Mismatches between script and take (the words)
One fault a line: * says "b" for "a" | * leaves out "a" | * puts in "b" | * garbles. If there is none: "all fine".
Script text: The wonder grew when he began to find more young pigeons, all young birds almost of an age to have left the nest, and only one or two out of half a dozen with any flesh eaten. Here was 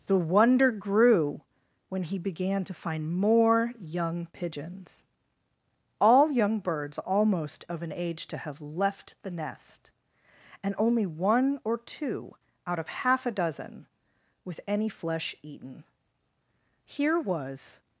all fine